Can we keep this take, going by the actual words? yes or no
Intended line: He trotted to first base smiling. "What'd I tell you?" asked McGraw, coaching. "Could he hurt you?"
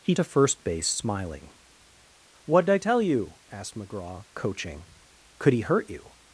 no